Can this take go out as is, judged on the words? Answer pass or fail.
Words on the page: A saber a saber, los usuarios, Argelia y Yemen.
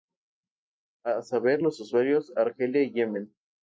fail